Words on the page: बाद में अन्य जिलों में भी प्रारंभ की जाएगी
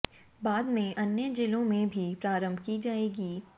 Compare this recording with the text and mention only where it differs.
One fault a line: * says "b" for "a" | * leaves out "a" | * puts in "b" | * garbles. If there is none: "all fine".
all fine